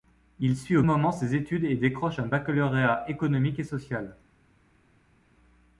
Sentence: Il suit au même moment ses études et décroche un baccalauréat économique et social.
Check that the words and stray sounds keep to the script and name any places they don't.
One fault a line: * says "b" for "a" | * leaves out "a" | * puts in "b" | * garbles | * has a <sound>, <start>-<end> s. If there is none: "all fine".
* leaves out "même"